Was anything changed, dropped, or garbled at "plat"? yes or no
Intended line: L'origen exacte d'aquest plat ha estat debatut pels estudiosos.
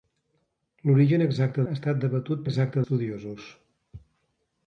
yes